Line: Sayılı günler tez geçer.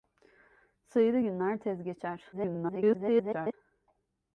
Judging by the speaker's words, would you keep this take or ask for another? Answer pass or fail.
fail